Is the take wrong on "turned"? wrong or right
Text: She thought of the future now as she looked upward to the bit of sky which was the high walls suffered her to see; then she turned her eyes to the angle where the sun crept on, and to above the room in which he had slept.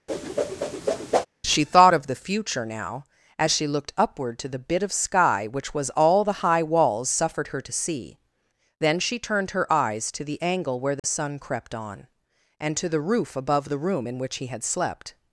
right